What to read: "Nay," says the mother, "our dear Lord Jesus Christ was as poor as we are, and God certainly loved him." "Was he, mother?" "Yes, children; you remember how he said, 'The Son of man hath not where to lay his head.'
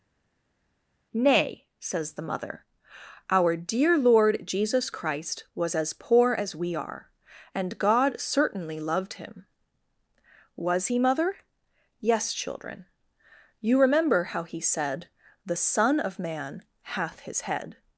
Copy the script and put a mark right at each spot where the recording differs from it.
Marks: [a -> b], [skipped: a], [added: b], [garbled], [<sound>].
"Nay," says the mother, "our dear Lord Jesus Christ was as poor as we are, and God certainly loved him." "Was he, mother?" "Yes, children; you remember how he said, 'The Son of man hath [skipped: not where to lay] his head.'